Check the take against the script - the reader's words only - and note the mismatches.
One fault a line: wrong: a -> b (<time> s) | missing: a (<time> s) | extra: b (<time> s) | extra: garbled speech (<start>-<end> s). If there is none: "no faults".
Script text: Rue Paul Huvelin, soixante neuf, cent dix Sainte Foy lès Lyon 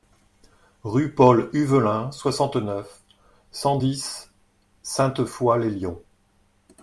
no faults